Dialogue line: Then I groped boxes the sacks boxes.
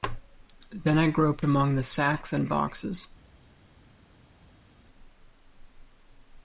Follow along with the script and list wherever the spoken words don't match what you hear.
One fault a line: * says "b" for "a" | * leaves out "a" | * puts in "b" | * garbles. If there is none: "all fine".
* says "among" for "boxes"
* puts in "and"